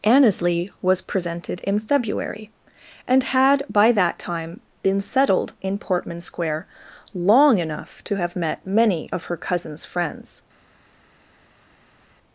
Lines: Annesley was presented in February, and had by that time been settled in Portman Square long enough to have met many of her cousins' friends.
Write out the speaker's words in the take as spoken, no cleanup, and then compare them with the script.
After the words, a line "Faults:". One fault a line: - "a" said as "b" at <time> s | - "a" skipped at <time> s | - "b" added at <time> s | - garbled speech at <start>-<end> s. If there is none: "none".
Annesley was presented in February, and had by that time been settled in Portman Square long enough to have met many of her cousins' friends.
Faults:
none